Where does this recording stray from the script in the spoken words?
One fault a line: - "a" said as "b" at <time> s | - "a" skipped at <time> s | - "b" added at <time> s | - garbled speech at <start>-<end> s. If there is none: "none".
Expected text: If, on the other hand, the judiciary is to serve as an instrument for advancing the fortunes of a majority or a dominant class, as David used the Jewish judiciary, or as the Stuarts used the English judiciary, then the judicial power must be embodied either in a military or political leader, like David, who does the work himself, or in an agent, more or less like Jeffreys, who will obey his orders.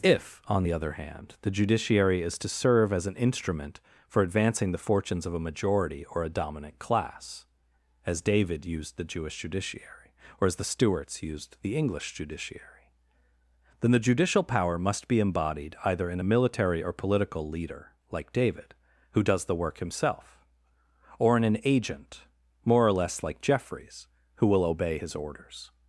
none